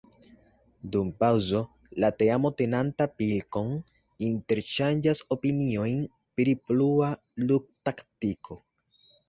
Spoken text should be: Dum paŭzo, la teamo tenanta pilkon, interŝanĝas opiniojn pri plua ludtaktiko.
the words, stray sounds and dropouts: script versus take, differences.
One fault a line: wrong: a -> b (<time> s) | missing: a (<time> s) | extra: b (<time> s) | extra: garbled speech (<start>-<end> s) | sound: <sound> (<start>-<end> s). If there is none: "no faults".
no faults